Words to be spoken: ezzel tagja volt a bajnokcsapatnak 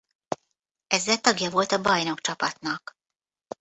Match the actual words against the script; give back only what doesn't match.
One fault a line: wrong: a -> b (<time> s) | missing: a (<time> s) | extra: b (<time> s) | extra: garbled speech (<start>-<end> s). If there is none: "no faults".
no faults